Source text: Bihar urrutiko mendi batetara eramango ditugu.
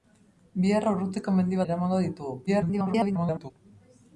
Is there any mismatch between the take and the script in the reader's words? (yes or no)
yes